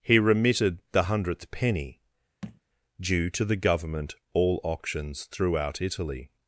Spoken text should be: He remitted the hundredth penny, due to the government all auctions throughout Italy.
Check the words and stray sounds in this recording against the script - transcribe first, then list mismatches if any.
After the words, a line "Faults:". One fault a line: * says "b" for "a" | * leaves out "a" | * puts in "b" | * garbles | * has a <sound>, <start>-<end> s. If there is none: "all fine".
He remitted the hundredth penny, due to the government all auctions throughout Italy.
Faults:
* has a thud, 2.4-2.6 s